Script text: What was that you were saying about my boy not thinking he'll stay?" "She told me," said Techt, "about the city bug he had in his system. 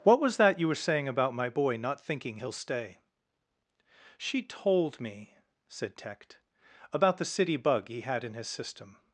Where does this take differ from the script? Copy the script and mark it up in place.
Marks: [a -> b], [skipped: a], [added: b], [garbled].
What was that you were saying about my boy not thinking he'll stay?" "She told me," said Techt, "about the city bug he had in his system.